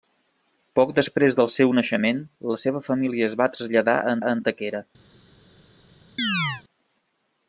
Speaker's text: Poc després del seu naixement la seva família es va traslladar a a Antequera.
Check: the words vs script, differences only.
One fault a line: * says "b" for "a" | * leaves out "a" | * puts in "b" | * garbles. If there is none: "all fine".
all fine